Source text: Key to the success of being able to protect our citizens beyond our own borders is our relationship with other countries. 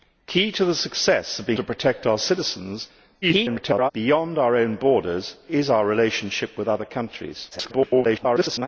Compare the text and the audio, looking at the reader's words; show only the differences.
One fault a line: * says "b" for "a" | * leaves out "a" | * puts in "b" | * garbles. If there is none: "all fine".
* leaves out "able"
* garbles
* garbles